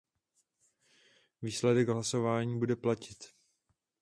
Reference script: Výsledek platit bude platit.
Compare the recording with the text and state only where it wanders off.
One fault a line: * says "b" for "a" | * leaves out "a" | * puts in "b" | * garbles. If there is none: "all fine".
* says "hlasování" for "platit"